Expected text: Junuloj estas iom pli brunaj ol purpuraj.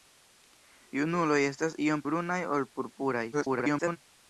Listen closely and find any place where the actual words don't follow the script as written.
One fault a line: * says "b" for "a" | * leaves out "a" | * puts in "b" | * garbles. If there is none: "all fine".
* leaves out "pli"
* garbles